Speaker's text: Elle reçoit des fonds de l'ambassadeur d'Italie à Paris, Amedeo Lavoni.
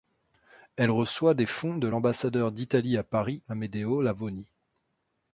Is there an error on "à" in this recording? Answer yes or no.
no